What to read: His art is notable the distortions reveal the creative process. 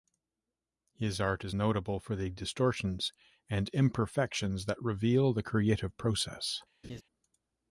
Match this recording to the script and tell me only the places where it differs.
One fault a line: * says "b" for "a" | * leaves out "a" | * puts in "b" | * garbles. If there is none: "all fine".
* puts in "for"
* puts in "and imperfections that"